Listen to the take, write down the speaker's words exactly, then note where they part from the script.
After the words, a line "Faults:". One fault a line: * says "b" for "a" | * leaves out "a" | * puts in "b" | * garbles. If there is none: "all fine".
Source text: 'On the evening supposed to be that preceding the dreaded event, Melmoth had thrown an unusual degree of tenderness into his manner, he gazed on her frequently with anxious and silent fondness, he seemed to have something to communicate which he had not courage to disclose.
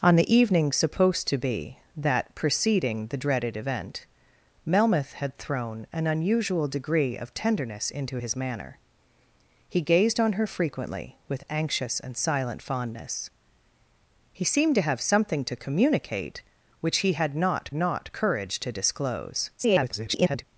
'On the evening supposed to be that preceding the dreaded event, Melmoth had thrown an unusual degree of tenderness into his manner, he gazed on her frequently with anxious and silent fondness, he seemed to have something to communicate which he had not not courage to disclose. [garbled]
Faults:
* puts in "not"
* garbles